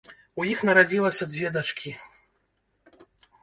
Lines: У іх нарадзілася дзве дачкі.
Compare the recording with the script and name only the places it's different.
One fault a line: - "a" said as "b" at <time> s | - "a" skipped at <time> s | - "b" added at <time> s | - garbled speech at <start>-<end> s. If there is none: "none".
none